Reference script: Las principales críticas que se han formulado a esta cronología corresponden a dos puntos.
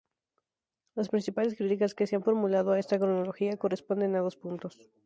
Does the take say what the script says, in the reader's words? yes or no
yes